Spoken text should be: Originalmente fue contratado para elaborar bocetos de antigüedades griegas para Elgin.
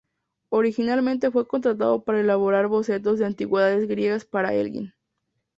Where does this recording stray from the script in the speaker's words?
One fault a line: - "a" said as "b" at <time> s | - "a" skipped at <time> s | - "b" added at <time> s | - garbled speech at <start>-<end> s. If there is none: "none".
none